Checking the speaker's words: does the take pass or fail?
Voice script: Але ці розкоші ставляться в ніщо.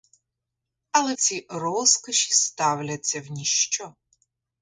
pass